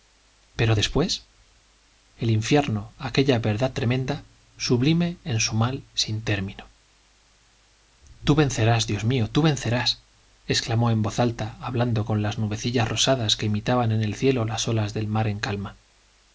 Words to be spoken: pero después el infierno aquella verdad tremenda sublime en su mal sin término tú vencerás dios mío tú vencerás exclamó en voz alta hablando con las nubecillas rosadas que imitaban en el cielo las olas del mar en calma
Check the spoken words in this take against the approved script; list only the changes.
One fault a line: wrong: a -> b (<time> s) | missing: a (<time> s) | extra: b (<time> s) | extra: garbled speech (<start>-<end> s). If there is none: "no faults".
no faults